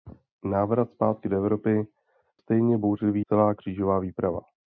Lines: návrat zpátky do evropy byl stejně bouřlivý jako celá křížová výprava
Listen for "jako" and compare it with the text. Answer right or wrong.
wrong